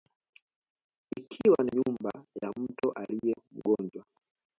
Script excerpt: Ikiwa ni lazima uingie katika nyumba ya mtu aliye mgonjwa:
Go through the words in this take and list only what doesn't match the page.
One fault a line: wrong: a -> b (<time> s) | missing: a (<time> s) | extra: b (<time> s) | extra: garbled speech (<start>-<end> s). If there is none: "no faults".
missing: lazima uingie katika (1.7 s)